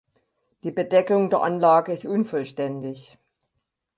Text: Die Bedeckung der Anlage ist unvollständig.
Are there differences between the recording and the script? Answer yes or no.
no